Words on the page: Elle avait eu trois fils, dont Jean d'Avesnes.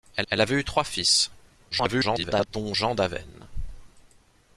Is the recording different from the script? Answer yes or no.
yes